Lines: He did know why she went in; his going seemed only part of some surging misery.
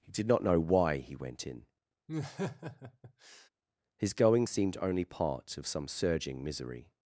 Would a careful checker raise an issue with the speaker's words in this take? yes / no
yes